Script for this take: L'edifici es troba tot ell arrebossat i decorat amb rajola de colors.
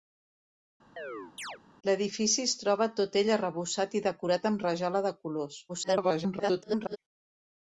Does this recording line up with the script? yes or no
no